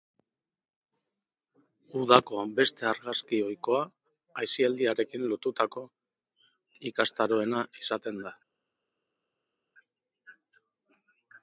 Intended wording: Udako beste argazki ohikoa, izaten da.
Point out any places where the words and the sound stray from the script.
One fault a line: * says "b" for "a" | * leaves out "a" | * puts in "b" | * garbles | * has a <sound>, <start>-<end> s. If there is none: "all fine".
* puts in "aisialdiarekin lotutako ikastaroena"